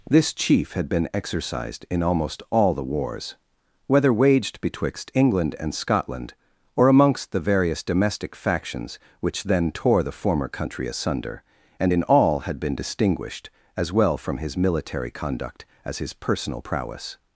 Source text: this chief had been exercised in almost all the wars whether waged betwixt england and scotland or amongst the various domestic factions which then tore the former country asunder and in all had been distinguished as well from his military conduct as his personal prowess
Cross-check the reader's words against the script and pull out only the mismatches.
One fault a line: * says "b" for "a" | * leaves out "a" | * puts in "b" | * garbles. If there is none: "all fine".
all fine